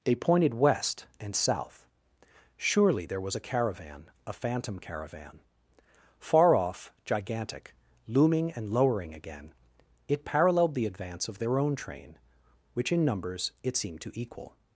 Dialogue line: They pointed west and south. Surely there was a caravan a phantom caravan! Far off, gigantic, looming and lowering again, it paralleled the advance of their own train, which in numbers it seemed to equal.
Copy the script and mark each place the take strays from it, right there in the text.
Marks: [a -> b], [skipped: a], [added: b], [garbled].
They pointed west and south. Surely there was a caravan a phantom caravan! Far off, gigantic, looming and lowering again, it paralleled the advance of their own train, which in numbers it seemed to equal.